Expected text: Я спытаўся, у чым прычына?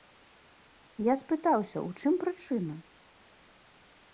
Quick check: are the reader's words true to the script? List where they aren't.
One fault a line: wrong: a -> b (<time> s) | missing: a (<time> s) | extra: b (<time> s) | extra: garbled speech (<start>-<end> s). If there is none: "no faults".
no faults